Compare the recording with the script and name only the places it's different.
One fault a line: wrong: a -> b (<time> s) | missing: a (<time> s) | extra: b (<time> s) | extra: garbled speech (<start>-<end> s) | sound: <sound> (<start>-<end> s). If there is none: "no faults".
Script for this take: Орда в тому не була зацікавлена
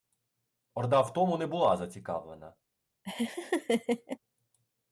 sound: laugh (3.0-4.2 s)